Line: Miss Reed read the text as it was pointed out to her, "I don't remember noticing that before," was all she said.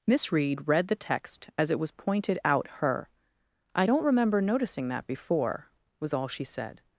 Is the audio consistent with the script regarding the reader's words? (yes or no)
no